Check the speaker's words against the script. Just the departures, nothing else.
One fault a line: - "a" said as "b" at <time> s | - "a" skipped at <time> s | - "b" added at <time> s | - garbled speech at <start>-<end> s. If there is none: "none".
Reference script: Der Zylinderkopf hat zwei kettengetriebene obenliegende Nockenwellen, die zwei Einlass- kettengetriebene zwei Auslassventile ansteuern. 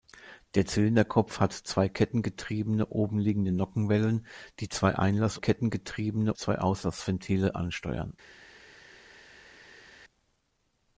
none